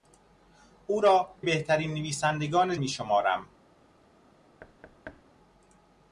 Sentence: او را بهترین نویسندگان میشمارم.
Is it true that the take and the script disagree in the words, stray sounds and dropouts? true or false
true